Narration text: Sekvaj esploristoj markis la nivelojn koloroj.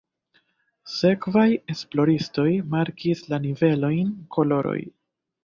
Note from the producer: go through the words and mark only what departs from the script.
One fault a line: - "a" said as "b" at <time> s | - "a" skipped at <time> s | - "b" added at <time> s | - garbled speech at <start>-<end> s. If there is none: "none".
none